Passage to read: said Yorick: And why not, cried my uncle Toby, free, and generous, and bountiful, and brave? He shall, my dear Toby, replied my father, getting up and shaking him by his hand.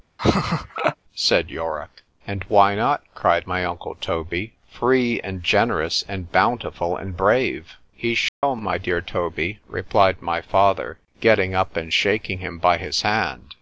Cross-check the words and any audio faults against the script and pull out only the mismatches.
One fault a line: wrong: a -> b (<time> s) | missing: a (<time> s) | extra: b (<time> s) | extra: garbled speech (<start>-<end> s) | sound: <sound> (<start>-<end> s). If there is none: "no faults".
sound: laugh (0.2-1.0 s)
sound: dropout (8.3-8.4 s)